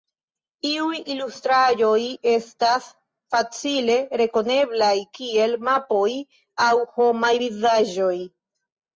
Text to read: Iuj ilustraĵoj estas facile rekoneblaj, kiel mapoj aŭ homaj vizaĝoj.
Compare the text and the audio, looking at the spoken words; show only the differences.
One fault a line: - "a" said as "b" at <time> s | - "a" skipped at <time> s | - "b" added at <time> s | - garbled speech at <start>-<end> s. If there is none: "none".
none